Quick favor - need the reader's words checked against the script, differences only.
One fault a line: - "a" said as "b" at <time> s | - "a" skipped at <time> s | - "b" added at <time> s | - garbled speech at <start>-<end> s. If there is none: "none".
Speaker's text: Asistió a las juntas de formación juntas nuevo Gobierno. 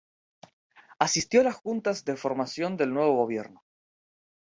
- "juntas" said as "del" at 2.8 s